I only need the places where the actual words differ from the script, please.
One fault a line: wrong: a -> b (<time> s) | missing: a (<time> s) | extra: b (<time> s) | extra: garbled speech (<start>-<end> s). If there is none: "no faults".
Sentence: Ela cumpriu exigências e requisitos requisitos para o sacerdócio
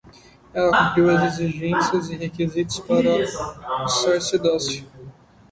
extra: as (1.1 s)
missing: requisitos (2.8 s)